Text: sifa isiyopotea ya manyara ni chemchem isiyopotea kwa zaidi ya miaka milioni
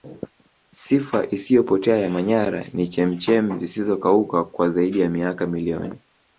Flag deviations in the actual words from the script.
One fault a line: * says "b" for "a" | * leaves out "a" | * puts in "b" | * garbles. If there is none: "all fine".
* says "zisizokauka" for "isiyopotea"